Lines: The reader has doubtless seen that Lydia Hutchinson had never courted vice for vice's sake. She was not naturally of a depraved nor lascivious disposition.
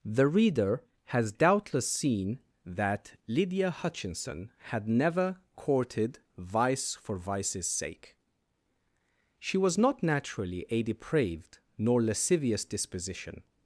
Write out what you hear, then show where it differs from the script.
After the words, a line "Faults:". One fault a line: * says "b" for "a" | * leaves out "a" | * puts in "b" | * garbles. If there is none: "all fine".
The reader has doubtless seen that Lydia Hutchinson had never courted vice for vice's sake. She was not naturally a depraved nor lascivious disposition.
Faults:
* leaves out "of"